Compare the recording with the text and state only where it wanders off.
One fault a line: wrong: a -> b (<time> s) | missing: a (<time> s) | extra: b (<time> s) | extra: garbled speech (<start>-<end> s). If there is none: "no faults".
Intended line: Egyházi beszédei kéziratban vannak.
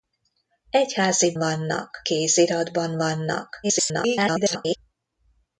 wrong: beszédei -> vannak (1.4 s)
extra: garbled speech (3.6-4.8 s)